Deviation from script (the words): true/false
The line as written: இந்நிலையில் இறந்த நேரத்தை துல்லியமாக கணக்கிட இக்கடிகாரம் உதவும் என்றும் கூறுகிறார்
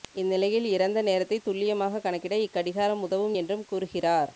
false